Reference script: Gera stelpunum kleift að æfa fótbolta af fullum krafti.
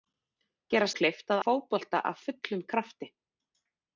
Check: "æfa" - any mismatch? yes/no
yes